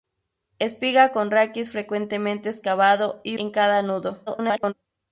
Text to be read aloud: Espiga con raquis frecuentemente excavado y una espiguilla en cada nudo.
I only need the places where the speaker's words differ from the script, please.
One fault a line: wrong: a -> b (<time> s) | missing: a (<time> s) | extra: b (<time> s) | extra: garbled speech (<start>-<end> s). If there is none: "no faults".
missing: una espiguilla (3.4 s)
extra: garbled speech (4.3-4.7 s)